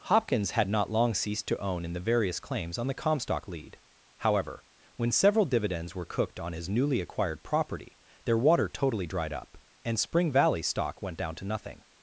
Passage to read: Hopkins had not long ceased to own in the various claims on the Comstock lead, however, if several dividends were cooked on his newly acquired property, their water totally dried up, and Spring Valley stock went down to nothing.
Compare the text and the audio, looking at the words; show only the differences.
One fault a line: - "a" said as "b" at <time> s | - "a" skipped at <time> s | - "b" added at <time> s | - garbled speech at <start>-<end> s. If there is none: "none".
- "if" said as "when" at 5.0 s